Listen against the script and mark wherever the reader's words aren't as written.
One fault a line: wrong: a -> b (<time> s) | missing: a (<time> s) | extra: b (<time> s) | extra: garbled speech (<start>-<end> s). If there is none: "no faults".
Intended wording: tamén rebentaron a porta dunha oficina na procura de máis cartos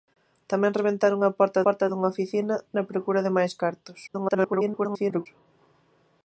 extra: porta (1.6 s)
extra: garbled speech (4.1-5.3 s)